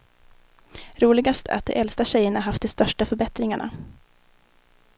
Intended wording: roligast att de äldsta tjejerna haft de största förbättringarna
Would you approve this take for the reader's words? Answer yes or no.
yes